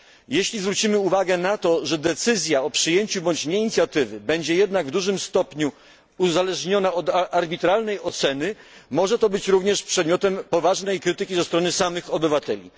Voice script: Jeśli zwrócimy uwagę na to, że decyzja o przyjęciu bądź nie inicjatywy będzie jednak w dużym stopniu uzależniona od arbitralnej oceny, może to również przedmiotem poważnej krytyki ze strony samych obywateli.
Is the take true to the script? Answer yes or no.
no